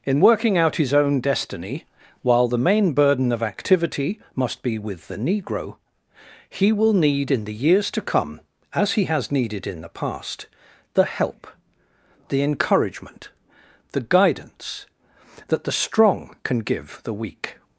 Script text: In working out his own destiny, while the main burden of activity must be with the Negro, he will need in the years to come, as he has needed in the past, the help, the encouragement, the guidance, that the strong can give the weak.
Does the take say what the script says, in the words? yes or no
yes